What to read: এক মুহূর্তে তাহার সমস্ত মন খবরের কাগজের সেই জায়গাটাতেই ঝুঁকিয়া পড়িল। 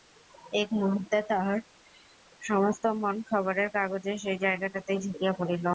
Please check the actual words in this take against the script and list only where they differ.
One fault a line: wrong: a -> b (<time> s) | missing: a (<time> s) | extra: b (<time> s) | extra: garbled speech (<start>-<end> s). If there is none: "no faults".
no faults